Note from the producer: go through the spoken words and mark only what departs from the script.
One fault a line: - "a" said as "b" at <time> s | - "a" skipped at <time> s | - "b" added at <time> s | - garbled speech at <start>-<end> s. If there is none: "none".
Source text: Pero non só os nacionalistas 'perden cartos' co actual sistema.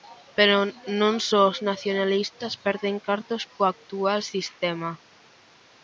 none